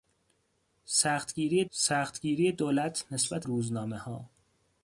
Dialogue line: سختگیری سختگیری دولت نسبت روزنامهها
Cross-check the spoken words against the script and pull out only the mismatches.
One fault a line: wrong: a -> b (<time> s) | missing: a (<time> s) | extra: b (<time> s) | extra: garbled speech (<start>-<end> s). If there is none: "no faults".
no faults